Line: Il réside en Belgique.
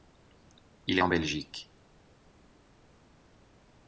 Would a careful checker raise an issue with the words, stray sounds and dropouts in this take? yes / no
yes